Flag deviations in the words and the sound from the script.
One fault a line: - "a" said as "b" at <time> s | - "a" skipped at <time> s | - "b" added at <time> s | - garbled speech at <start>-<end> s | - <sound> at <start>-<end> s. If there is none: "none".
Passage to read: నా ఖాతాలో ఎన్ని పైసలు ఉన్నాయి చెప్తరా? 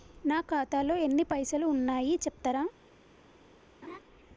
- laugh at 3.8-4.0 s